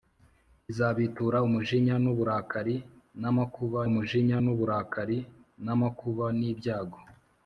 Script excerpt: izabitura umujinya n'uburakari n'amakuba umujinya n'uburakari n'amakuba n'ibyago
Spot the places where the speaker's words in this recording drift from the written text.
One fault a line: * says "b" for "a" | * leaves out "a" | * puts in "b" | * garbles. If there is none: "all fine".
all fine